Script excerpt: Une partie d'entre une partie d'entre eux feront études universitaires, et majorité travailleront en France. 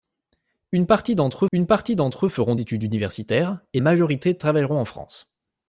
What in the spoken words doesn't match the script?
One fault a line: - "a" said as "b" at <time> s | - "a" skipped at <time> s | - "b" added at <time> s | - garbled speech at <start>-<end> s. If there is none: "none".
none